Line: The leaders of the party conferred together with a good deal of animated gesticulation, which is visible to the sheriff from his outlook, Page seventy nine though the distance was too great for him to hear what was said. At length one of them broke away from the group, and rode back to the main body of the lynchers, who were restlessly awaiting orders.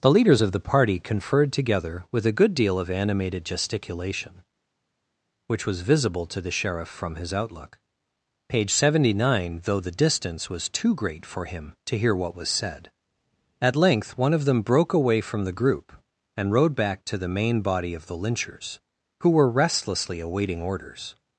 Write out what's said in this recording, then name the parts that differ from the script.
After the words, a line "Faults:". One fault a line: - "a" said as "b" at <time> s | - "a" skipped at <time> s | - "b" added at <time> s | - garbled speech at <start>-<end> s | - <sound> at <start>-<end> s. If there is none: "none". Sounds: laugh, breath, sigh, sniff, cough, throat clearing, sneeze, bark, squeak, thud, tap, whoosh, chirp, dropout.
The leaders of the party conferred together with a good deal of animated gesticulation, which was visible to the sheriff from his outlook, Page seventy nine though the distance was too great for him to hear what was said. At length one of them broke away from the group, and rode back to the main body of the lynchers, who were restlessly awaiting orders.
Faults:
- "is" said as "was" at 5.7 s